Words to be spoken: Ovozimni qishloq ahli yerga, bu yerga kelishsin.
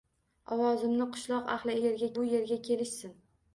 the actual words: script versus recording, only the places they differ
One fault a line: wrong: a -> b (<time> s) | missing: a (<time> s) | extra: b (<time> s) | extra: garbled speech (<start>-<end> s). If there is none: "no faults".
no faults